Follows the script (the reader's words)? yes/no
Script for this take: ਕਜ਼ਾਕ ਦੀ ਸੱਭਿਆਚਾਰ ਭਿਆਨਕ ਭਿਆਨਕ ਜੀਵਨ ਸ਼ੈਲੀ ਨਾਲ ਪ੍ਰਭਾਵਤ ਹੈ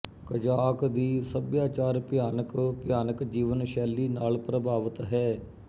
yes